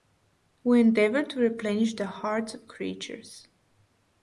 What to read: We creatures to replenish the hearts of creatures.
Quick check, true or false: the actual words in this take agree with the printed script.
false